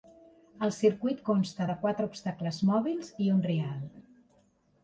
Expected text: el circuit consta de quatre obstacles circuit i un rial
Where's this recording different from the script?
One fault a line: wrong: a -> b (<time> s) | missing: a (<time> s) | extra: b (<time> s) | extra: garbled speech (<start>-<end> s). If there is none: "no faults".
wrong: circuit -> mòbils (2.7 s)